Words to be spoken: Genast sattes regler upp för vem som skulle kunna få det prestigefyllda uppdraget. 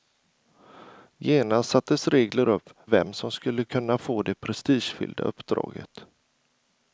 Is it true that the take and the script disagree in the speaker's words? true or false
true